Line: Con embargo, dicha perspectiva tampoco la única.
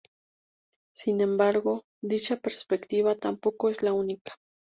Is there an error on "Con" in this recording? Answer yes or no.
yes